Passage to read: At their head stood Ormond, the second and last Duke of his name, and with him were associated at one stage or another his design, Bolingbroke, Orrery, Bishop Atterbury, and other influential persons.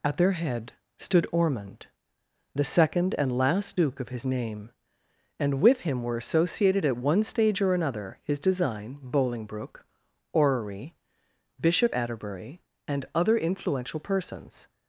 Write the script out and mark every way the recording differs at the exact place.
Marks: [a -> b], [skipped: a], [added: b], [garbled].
At their head stood Ormond, the second and last Duke of his name, and with him were associated at one stage or another his design, Bolingbroke, Orrery, Bishop Atterbury, and other influential persons.